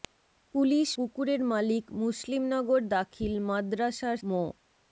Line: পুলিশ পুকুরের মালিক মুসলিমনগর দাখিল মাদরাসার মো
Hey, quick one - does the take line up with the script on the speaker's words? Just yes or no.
yes